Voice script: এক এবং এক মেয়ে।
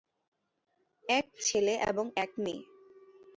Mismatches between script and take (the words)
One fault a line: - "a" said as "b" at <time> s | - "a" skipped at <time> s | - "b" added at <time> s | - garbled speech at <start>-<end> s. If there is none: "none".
- "ছেলে" added at 1.4 s